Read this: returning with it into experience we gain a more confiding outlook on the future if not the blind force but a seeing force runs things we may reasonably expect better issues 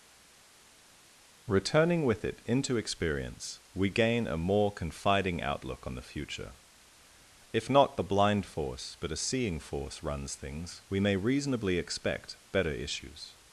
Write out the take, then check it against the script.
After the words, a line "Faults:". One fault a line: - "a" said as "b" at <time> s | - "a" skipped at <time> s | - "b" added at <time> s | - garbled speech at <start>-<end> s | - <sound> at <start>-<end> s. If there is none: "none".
returning with it into experience we gain a more confiding outlook on the future if not the blind force but a seeing force runs things we may reasonably expect better issues
Faults:
none